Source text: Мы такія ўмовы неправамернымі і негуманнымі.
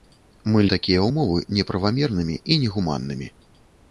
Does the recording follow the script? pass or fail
pass